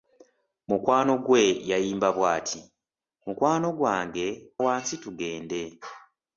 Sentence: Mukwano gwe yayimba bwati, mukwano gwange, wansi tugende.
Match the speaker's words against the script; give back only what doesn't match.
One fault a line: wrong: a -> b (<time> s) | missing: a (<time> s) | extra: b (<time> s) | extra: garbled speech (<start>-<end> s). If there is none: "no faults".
no faults